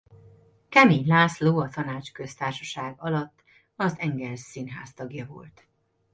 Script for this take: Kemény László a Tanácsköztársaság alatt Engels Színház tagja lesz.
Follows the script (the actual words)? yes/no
no